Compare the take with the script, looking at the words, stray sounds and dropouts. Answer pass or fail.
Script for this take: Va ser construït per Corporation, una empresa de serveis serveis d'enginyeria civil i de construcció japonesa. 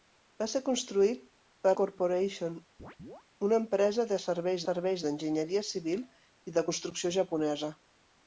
fail